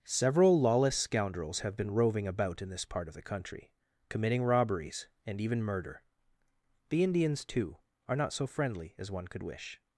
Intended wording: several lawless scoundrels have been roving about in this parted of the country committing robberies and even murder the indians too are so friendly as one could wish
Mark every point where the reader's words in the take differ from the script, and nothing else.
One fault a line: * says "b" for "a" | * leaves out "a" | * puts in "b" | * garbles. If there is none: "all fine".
* says "part" for "parted"
* puts in "not"